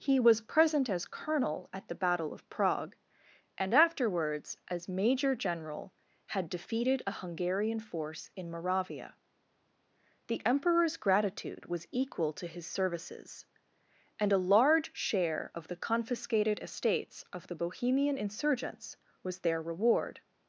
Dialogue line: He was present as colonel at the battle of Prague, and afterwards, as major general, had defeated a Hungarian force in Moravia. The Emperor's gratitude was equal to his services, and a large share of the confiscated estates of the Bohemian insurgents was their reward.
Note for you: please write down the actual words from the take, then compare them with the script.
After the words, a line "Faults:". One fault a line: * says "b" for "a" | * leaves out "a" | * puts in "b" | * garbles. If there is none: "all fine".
He was present as colonel at the battle of Prague, and afterwards, as major general, had defeated a Hungarian force in Moravia. The Emperor's gratitude was equal to his services, and a large share of the confiscated estates of the Bohemian insurgents was their reward.
Faults:
all fine